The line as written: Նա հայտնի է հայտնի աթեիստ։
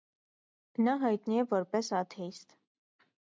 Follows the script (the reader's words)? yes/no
no